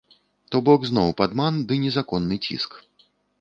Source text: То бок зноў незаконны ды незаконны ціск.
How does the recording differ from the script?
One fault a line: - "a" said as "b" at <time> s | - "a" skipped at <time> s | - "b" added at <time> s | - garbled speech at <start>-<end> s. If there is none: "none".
- "незаконны" said as "падман" at 1.2 s